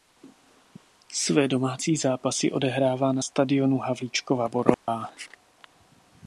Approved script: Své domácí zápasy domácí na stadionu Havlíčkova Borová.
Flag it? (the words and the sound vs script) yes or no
yes